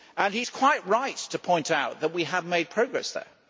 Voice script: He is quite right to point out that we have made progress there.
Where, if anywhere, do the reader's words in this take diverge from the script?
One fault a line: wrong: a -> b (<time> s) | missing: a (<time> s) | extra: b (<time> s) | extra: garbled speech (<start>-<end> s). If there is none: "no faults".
no faults